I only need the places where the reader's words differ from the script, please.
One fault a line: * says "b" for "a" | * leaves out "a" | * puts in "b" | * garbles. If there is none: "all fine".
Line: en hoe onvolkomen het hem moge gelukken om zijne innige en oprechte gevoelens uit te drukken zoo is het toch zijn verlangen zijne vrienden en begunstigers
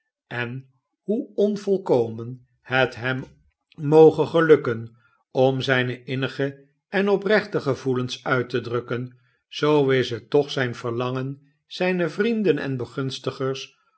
all fine